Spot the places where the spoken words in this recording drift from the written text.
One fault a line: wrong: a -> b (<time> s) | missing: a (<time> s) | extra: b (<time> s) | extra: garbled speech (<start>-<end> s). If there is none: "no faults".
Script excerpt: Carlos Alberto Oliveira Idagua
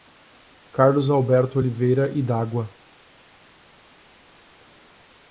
no faults